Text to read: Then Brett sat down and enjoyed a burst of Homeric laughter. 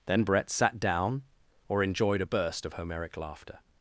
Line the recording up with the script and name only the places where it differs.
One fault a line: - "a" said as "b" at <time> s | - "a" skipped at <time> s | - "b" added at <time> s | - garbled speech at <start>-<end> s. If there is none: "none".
- "and" said as "or" at 1.7 s